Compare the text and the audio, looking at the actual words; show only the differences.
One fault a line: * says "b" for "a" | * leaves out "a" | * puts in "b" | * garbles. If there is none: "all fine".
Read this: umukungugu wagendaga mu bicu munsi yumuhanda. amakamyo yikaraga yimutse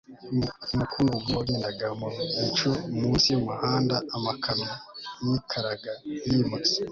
all fine